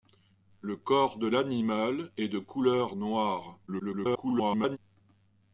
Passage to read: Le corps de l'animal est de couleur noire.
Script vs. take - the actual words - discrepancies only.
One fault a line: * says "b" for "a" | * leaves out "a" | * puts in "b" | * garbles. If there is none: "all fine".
* garbles